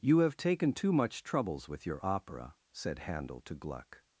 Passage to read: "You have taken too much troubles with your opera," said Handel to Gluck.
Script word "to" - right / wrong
right